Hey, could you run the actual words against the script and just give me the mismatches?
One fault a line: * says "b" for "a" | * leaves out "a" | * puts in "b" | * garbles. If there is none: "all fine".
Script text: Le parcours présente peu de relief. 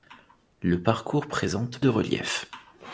* leaves out "peu"